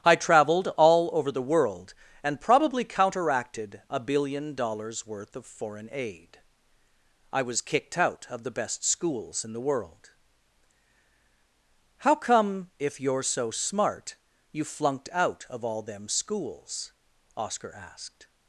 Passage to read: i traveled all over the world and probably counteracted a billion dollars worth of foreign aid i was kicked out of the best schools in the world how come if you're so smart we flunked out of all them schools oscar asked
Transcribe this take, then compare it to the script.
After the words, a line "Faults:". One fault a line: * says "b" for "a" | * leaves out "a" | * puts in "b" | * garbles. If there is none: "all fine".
i traveled all over the world and probably counteracted a billion dollars worth of foreign aid i was kicked out of the best schools in the world how come if you're so smart you flunked out of all them schools oscar asked
Faults:
* says "you" for "we"